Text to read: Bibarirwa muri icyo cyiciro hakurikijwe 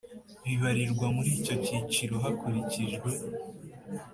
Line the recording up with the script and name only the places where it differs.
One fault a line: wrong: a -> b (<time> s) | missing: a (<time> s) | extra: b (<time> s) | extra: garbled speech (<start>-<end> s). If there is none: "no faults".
no faults